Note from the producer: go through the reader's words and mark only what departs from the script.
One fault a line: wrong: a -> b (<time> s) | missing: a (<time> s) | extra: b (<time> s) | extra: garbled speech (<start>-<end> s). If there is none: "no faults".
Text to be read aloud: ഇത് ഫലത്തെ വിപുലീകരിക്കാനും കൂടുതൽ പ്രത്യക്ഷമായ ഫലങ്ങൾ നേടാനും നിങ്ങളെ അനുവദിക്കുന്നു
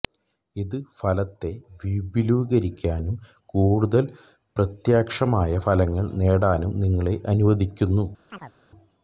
no faults